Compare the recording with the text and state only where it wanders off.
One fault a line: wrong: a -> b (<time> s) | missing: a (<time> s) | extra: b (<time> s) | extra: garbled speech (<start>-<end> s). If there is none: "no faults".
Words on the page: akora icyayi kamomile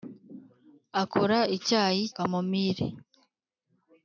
no faults